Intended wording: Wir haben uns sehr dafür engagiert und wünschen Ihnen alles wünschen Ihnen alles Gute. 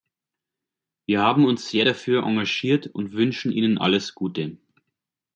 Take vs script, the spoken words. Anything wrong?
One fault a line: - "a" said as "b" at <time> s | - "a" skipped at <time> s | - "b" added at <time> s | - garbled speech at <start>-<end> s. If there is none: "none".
- "wünschen Ihnen alles" skipped at 4.1 s